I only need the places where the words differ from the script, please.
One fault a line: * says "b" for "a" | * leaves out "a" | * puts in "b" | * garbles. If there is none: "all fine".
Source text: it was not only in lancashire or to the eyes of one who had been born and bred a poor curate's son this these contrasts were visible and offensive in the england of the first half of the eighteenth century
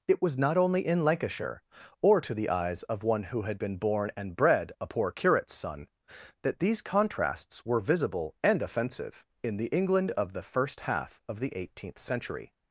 * says "that" for "this"